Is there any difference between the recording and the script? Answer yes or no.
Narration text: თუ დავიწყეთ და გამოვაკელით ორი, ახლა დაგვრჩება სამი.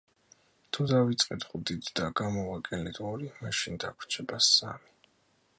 yes